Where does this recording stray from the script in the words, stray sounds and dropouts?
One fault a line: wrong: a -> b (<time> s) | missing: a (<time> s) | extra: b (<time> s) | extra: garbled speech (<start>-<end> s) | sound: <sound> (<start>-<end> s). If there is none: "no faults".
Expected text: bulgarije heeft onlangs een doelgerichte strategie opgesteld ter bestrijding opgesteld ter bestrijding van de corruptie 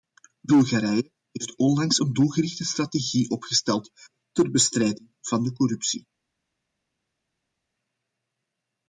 missing: opgesteld ter bestrijding (5.1 s)